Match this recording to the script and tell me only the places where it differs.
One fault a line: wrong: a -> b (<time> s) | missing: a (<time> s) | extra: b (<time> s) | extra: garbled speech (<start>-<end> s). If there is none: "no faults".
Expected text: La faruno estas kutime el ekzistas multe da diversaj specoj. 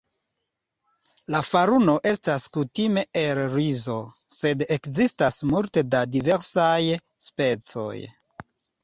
extra: rizo sed (3.6 s)